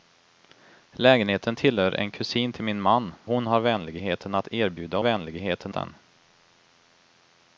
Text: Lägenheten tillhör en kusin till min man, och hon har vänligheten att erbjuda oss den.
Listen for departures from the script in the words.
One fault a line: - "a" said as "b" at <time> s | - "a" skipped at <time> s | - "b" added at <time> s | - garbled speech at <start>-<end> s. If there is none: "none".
- "och" skipped at 3.1 s
- "oss" said as "vänligheten" at 5.0 s